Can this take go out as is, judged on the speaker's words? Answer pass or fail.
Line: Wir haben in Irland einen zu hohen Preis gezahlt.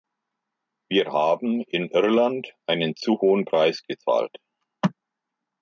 pass